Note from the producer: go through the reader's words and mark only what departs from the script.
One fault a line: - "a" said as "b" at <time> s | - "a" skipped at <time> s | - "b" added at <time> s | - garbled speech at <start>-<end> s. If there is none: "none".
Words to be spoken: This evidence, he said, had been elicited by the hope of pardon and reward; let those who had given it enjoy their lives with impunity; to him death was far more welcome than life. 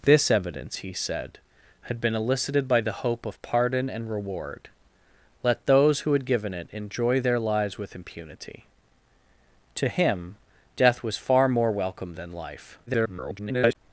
- garbled speech at 12.9-13.8 s